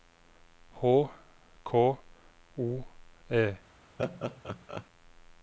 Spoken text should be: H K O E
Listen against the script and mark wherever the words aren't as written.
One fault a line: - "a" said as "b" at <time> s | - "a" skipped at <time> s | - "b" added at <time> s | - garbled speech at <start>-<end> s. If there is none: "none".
none